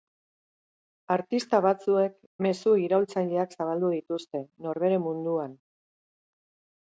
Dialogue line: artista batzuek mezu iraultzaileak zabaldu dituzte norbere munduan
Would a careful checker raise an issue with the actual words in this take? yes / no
no